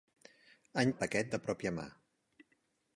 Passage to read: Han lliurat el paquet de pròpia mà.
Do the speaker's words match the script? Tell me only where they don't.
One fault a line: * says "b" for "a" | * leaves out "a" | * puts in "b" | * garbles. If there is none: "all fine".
* leaves out "lliurat"